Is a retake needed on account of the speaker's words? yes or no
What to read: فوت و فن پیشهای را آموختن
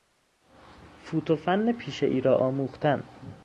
no